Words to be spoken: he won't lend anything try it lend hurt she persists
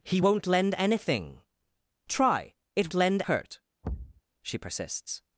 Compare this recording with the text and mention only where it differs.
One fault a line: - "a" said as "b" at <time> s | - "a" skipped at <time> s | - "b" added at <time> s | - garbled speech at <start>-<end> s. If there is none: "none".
none